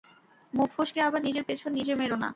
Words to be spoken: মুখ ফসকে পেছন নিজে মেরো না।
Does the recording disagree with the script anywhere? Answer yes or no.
yes